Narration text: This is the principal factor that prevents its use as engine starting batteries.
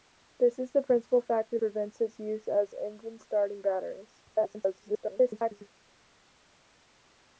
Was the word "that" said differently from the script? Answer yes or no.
yes